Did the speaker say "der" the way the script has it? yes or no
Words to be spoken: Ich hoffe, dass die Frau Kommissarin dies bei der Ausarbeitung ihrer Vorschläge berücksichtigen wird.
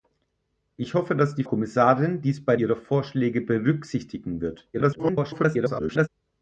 no